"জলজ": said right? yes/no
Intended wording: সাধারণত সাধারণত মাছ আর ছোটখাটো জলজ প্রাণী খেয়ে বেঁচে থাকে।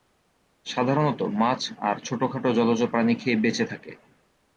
yes